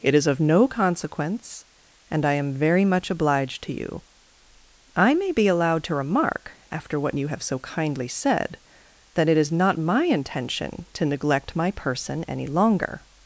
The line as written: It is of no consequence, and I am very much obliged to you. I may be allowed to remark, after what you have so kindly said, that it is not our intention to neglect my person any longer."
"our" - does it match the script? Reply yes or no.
no